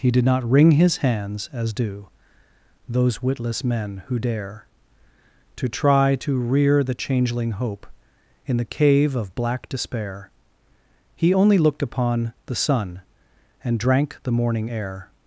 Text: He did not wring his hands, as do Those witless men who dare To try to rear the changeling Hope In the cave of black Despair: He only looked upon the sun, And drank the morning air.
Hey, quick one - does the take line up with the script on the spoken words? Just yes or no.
yes